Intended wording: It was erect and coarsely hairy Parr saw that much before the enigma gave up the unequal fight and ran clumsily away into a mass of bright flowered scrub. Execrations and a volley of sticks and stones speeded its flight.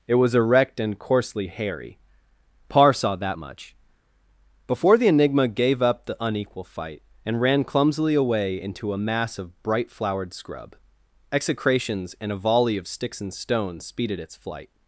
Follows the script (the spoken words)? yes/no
yes